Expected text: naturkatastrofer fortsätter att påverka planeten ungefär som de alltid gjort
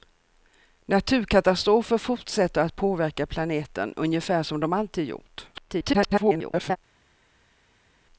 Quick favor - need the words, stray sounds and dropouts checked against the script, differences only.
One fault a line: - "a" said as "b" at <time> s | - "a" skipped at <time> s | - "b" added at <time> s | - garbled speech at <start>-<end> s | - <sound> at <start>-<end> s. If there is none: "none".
- garbled speech at 5.5-6.8 s